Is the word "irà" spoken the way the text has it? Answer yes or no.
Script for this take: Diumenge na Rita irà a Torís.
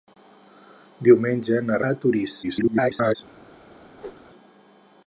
no